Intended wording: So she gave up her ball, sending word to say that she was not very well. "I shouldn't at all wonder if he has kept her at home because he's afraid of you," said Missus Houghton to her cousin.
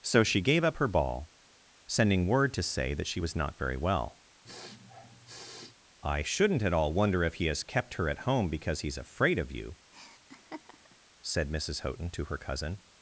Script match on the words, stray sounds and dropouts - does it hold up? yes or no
no